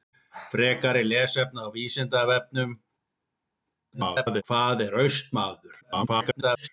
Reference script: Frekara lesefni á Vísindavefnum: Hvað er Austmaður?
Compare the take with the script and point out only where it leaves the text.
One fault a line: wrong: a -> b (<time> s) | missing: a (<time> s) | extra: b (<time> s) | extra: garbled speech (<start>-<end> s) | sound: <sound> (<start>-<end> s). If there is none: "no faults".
extra: garbled speech (3.9-4.4 s)
extra: garbled speech (5.8-6.7 s)